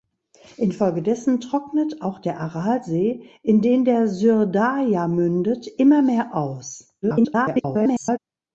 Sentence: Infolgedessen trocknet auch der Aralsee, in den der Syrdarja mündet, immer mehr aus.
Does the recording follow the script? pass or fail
fail